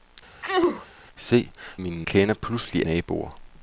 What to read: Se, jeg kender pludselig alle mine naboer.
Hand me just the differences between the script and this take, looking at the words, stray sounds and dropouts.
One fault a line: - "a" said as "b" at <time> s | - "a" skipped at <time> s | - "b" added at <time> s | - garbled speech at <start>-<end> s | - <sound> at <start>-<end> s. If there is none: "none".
- sneeze at 0.4-0.9 s
- "jeg" said as "mine" at 1.8 s
- "alle mine" skipped at 2.9 s